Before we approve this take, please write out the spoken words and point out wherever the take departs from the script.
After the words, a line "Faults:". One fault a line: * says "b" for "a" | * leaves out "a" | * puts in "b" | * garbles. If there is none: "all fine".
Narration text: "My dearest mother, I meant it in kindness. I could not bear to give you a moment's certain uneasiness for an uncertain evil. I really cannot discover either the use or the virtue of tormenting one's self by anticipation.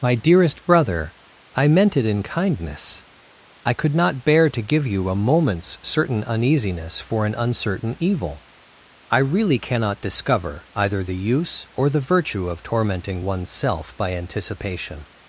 "My dearest brother, I meant it in kindness. I could not bear to give you a moment's certain uneasiness for an uncertain evil. I really cannot discover either the use or the virtue of tormenting one's self by anticipation.
Faults:
* says "brother" for "mother"